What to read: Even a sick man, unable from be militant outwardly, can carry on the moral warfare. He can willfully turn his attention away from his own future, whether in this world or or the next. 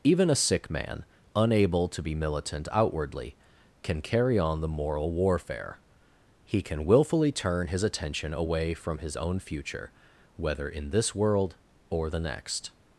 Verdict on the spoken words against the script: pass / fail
fail